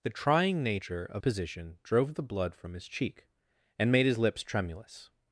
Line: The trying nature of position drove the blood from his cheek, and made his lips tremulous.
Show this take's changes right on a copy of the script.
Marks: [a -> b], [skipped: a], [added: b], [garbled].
The trying nature of position drove the blood from his cheek, and made his lips tremulous.